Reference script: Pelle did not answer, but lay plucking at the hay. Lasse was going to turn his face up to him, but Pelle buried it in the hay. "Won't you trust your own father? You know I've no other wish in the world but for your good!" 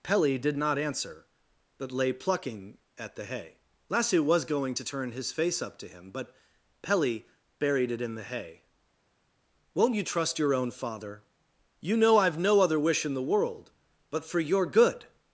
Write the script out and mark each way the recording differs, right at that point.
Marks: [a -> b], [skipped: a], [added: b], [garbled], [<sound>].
Pelle did not answer, but lay plucking at the hay. Lasse was going to turn his face up to him, but Pelle buried it in the hay. "Won't you trust your own father? You know I've no other wish in the world but for your good!"